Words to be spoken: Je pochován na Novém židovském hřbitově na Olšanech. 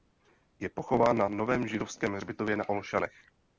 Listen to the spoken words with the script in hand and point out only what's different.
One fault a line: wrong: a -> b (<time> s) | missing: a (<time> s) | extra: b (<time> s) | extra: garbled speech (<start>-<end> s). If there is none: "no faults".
no faults